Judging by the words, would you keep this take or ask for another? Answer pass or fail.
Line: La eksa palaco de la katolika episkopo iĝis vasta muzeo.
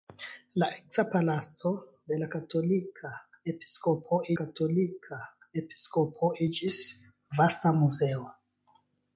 fail